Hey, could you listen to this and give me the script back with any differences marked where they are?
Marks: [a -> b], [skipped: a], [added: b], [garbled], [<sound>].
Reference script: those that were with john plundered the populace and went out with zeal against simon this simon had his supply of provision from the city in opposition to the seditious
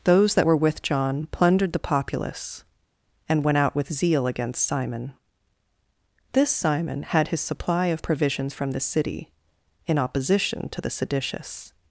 those that were with john plundered the populace and went out with zeal against simon this simon had his supply of [provision -> provisions] from the city in opposition to the seditious